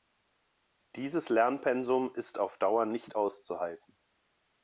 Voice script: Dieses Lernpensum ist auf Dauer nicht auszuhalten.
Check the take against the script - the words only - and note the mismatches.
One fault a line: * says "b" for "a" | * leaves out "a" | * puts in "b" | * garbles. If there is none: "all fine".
all fine